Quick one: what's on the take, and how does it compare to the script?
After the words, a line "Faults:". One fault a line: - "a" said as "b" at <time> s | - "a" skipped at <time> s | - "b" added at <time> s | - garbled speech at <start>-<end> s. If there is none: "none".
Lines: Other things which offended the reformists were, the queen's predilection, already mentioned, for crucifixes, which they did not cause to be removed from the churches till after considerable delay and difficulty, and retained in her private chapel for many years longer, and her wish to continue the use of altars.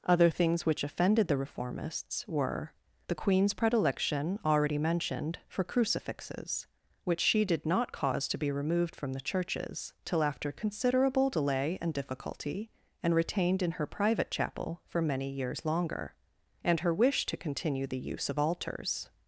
Other things which offended the reformists were, the queen's predilection, already mentioned, for crucifixes, which she did not cause to be removed from the churches till after considerable delay and difficulty, and retained in her private chapel for many years longer, and her wish to continue the use of altars.
Faults:
- "they" said as "she" at 7.2 s